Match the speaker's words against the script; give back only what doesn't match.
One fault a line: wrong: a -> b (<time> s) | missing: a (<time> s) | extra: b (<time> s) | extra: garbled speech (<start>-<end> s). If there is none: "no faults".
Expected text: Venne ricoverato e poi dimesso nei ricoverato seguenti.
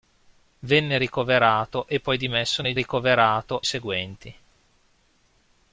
no faults